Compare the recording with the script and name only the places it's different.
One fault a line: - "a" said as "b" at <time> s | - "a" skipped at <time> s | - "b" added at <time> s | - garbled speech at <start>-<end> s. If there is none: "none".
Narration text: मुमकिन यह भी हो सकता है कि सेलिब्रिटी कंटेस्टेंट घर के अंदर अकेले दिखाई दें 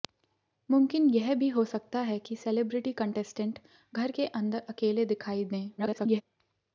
- garbled speech at 5.8-6.2 s